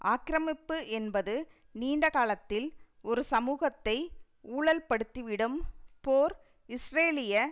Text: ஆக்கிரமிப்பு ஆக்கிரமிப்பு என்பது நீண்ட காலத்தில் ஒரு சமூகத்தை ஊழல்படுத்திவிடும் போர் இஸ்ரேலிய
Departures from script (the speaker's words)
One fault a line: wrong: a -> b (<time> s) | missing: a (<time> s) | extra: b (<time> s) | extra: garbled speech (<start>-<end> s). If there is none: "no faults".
missing: ஆக்கிரமிப்பு (0.8 s)